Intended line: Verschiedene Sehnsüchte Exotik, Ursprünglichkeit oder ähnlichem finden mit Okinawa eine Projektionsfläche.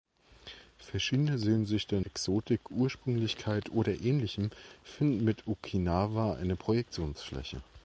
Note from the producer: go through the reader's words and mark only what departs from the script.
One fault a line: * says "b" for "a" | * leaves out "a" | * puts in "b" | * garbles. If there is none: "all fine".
all fine